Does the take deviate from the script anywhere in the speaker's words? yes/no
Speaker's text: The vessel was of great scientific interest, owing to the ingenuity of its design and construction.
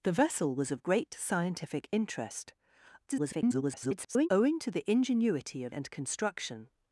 yes